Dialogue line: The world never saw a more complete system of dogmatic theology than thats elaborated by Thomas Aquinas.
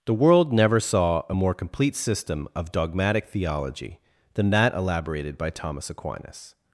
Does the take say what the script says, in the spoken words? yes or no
no